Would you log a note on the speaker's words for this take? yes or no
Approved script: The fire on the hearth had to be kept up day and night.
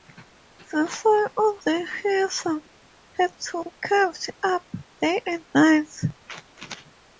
no